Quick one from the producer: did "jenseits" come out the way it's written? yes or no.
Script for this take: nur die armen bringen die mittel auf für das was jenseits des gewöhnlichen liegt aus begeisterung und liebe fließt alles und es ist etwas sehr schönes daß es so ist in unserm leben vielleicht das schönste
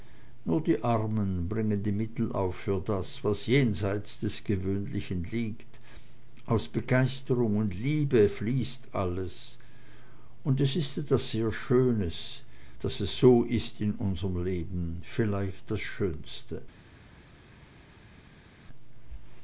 yes